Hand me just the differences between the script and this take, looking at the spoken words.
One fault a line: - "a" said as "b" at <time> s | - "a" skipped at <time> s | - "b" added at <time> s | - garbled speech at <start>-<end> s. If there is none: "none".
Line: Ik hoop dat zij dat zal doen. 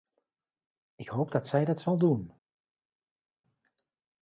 none